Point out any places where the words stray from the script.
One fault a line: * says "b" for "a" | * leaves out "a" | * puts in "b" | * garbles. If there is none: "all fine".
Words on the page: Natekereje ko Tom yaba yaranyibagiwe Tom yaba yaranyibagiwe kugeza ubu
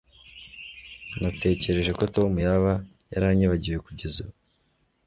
* leaves out "Tom yaba yaranyibagiwe"